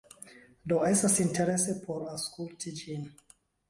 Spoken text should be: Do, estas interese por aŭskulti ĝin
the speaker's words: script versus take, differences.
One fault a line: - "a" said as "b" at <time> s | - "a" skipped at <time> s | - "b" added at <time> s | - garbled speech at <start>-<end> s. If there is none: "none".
none